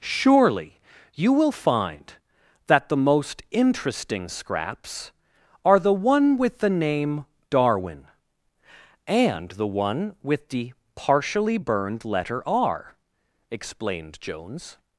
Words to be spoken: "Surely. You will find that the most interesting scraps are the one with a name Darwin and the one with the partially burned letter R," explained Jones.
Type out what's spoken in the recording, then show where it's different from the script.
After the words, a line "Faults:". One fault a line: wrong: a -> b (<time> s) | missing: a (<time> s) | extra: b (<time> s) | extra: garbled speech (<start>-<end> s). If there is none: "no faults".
"Surely. You will find that the most interesting scraps are the one with the name Darwin and the one with the partially burned letter R," explained Jones.
Faults:
wrong: a -> the (6.6 s)